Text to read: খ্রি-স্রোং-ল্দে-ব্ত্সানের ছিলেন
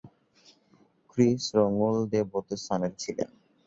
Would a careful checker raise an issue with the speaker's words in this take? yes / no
no